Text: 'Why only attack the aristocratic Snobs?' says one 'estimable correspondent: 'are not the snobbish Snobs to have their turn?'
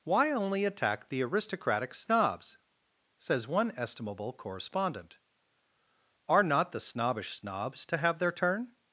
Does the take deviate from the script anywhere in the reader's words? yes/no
no